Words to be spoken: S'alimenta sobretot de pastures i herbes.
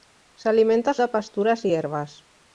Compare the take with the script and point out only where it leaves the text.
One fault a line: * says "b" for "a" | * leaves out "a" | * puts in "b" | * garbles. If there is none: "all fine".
* leaves out "sobretot"